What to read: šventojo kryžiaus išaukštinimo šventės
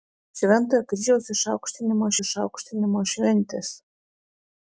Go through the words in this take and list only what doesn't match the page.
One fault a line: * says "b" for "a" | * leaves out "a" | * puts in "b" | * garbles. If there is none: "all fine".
* puts in "išaukštinimo"